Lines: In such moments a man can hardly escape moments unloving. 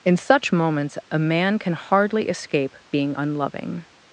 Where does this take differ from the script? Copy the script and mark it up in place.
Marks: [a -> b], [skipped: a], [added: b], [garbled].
In such moments a man can hardly escape [moments -> being] unloving.